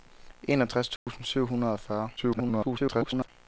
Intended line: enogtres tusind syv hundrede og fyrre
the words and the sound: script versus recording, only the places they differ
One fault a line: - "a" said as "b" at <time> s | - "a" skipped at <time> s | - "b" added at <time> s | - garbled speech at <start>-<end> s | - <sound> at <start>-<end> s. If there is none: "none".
- dropout at 1.0-1.1 s
- garbled speech at 2.2-3.3 s